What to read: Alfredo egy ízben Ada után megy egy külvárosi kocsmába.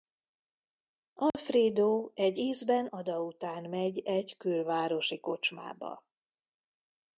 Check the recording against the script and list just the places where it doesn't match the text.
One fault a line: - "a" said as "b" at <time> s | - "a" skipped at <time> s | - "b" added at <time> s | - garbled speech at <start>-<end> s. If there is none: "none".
none